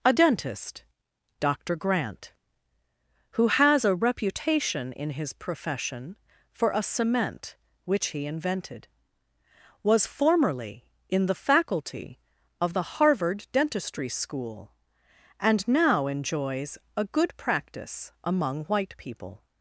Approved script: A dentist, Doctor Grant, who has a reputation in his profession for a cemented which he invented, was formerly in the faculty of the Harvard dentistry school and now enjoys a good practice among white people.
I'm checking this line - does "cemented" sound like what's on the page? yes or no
no